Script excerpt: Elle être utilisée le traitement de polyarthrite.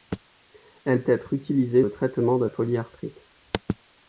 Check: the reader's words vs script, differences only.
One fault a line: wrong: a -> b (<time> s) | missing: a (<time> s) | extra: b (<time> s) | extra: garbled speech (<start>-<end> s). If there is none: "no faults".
no faults